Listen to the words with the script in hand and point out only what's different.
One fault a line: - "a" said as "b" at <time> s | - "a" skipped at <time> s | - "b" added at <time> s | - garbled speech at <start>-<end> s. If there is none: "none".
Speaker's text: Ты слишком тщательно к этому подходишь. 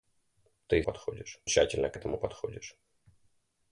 - "слишком" said as "подходишь" at 0.8 s